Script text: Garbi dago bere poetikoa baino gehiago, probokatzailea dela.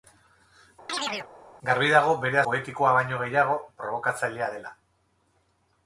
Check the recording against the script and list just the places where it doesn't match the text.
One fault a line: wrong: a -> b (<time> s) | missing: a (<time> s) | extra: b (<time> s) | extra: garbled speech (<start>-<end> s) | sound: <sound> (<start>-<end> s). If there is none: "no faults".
sound: chirp (0.9-1.3 s)